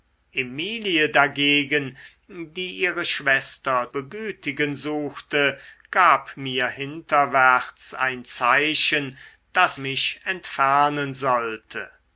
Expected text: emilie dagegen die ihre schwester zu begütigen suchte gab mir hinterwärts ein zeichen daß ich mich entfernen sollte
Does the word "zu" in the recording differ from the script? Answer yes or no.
yes